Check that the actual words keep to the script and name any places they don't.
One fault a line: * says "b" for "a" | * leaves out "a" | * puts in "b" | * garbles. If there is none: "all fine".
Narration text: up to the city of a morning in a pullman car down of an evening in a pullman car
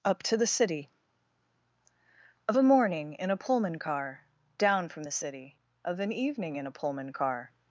* puts in "from the city"